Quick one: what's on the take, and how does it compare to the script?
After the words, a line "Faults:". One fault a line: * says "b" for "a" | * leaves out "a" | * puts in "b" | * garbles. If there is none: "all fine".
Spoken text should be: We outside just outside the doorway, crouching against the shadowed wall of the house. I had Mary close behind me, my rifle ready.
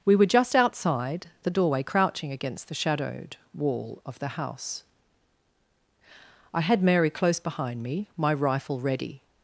We were just outside the doorway, crouching against the shadowed wall of the house. I had Mary close behind me, my rifle ready.
Faults:
* says "were" for "outside"